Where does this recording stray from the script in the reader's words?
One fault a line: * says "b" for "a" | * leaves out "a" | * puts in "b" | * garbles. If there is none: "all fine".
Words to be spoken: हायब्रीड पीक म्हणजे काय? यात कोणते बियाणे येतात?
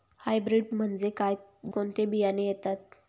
* leaves out "पीक"
* leaves out "यात"